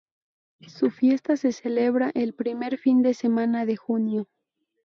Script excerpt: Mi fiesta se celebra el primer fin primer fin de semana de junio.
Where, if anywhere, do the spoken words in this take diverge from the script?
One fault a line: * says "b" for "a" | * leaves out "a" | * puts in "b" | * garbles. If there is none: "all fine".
* says "Su" for "Mi"
* leaves out "primer fin"